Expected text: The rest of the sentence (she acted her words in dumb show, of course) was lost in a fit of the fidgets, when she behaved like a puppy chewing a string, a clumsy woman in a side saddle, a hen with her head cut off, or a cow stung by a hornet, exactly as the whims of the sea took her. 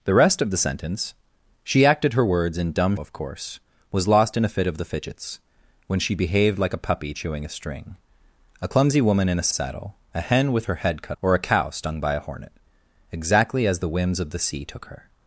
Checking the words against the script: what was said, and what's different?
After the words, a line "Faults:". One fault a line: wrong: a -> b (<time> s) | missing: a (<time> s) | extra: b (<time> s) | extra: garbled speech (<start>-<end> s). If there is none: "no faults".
The rest of the sentence (she acted her words in dumb of course) was lost in a fit of the fidgets, when she behaved like a puppy chewing a string, a clumsy woman in a saddle, a hen with her head cut or a cow stung by a hornet, exactly as the whims of the sea took her.
Faults:
missing: show (3.0 s)
missing: side (9.5 s)
missing: off (11.2 s)